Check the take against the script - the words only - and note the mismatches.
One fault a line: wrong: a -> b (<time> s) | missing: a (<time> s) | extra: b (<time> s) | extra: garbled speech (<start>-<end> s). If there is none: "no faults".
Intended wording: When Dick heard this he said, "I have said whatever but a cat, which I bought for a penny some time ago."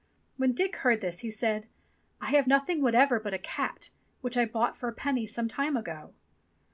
wrong: said -> nothing (2.5 s)